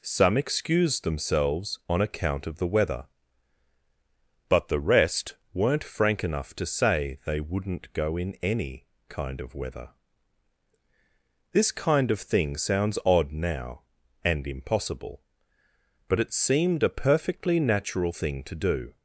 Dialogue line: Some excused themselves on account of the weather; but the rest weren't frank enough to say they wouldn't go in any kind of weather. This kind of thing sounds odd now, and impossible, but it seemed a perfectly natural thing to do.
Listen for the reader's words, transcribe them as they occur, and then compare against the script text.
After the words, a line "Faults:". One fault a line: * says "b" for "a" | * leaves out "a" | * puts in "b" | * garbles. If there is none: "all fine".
Some excused themselves on account of the weather; but the rest weren't frank enough to say they wouldn't go in any kind of weather. This kind of thing sounds odd now, and impossible, but it seemed a perfectly natural thing to do.
Faults:
all fine